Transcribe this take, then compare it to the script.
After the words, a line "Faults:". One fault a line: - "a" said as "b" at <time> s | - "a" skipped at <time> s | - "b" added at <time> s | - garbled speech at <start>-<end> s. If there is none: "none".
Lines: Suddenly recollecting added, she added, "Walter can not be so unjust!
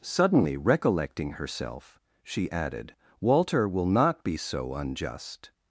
Suddenly recollecting herself, she added, "Walter will not be so unjust!
Faults:
- "added" said as "herself" at 1.3 s
- "can" said as "will" at 3.7 s